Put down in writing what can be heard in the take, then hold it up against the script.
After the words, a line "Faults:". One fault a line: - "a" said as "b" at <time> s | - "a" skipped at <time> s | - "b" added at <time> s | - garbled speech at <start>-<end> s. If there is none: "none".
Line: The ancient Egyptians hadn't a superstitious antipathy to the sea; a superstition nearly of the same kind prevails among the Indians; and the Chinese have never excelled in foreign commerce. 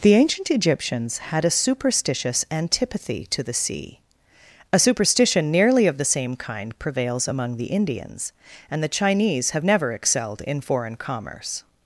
The ancient Egyptians had a superstitious antipathy to the sea; a superstition nearly of the same kind prevails among the Indians; and the Chinese have never excelled in foreign commerce.
Faults:
- "hadn't" said as "had" at 1.2 s